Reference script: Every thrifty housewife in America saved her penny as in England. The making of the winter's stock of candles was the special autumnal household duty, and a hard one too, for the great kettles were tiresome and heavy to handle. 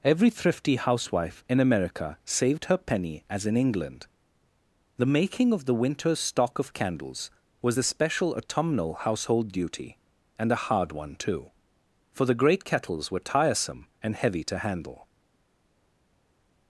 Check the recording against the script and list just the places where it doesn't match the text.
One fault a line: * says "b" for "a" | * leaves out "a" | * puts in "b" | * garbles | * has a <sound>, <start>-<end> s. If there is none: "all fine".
all fine